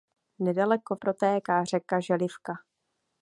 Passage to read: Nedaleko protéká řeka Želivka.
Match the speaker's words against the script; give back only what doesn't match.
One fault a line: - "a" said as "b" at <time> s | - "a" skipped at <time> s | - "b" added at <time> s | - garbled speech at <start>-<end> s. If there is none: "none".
none